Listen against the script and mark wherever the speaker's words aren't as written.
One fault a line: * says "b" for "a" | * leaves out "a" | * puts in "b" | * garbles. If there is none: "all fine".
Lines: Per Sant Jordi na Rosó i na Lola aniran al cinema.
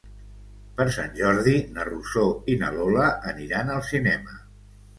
all fine